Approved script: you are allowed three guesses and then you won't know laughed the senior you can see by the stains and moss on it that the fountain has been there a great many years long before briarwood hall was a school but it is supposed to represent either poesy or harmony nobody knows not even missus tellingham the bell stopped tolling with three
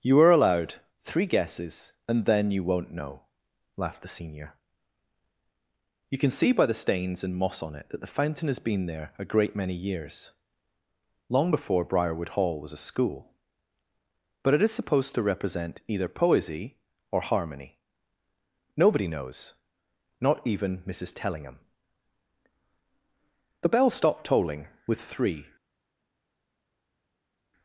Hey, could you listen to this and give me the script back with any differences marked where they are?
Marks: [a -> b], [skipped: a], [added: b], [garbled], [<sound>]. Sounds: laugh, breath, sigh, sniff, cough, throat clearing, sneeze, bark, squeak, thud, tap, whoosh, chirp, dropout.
you are allowed three guesses and then you won't know laughed the senior you can see by the stains and moss on it that the fountain has been there a great many years long before briarwood hall was a school but it is supposed to represent either poesy or harmony nobody knows not even missus tellingham the bell stopped tolling with three